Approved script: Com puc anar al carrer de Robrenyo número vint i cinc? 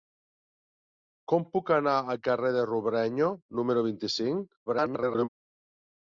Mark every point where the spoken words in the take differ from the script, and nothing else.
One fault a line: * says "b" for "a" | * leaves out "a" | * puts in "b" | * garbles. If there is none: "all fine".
* garbles